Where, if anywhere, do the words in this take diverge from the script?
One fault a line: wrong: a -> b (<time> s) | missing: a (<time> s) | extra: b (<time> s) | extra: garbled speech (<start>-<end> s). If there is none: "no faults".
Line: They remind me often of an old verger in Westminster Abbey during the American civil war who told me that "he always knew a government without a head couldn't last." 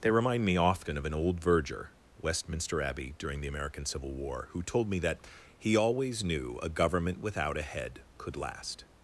missing: in (1.9 s)
wrong: couldn't -> could (8.2 s)